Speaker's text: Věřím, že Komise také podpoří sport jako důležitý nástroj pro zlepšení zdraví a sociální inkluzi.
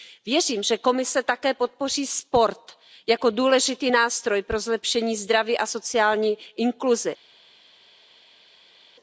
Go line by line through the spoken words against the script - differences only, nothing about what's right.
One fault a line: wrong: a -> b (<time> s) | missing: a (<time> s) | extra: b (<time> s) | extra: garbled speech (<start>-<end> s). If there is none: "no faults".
no faults